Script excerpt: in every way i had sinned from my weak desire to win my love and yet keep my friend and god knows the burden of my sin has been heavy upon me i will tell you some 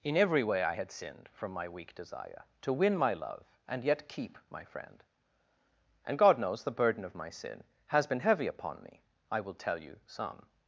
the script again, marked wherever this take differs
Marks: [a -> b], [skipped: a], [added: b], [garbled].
in every way i had sinned from my weak desire to win my love and yet keep my friend and god knows the burden of my sin has been heavy upon me i will tell you some